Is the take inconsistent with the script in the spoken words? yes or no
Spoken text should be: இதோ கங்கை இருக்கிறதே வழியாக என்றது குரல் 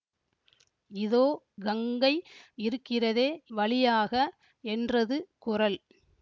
no